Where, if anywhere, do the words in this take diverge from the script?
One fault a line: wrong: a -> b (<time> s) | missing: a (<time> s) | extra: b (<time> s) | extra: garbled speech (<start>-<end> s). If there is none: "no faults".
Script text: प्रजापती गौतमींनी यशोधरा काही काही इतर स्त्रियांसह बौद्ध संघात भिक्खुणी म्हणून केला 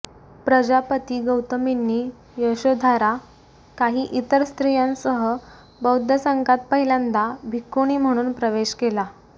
missing: काही (4.1 s)
extra: पहिल्यांदा (6.7 s)
extra: प्रवेश (8.3 s)